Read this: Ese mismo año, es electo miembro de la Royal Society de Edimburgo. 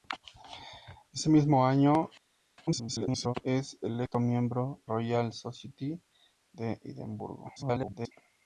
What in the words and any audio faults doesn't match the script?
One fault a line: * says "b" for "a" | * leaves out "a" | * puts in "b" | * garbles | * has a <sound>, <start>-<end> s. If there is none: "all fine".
* garbles
* leaves out "de la"
* garbles